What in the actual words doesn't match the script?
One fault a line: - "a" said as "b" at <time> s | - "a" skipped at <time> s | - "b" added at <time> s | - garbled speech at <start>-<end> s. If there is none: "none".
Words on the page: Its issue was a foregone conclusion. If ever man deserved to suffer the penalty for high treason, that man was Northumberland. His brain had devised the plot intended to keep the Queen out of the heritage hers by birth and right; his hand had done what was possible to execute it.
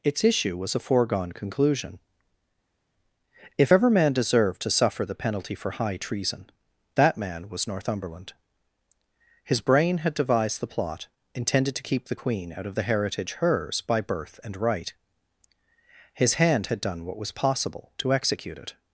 none